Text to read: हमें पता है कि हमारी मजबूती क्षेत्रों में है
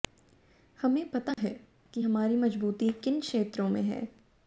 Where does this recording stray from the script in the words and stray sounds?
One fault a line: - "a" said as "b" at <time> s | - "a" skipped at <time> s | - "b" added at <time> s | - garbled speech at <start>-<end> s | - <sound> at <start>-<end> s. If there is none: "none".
- dropout at 1.3-1.4 s
- "किन" added at 3.0 s